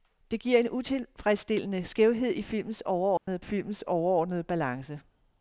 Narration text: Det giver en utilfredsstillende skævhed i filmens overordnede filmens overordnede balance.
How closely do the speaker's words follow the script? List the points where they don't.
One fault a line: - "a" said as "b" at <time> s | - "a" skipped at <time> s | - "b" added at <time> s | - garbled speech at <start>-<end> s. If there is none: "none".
none